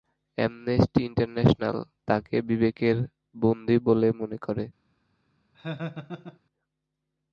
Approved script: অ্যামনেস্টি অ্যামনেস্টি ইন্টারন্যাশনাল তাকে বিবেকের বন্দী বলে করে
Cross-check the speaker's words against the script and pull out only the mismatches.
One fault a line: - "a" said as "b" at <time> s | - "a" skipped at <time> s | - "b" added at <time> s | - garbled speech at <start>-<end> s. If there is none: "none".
- "অ্যামনেস্টি" skipped at 1.0 s
- "মনে" added at 4.2 s